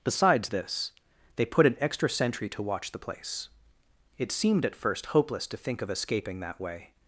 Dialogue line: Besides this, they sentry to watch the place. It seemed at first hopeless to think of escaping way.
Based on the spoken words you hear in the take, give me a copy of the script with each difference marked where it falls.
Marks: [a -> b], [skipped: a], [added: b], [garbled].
Besides this, they [added: put an extra] sentry to watch the place. It seemed at first hopeless to think of escaping [added: that] way.